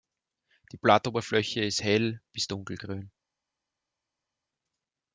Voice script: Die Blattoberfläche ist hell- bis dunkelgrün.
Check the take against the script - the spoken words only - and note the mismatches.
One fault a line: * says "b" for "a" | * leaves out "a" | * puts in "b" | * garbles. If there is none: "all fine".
all fine